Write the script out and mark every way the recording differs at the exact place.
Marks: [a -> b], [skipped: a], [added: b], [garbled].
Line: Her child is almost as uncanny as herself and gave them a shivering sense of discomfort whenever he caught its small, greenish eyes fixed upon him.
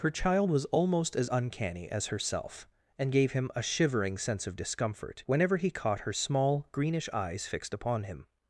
Her child [is -> was] almost as uncanny as herself and gave [them -> him] a shivering sense of discomfort whenever he caught [its -> her] small, greenish eyes fixed upon him.